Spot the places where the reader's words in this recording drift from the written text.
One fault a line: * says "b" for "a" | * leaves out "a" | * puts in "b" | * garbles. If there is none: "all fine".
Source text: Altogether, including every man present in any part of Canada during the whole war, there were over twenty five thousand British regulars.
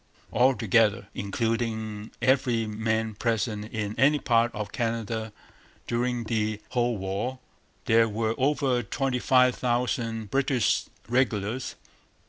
all fine